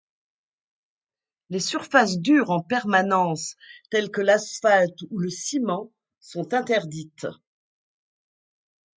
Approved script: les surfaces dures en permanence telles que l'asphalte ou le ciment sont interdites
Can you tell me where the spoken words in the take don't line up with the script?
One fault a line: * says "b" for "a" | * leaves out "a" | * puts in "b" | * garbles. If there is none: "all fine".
all fine